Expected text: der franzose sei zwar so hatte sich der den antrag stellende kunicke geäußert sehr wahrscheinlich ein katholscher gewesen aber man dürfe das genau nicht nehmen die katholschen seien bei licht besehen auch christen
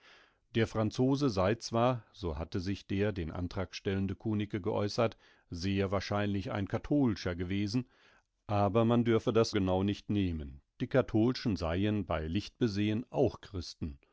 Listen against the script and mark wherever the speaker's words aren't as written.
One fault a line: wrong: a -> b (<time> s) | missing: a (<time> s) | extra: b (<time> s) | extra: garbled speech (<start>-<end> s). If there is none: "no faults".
no faults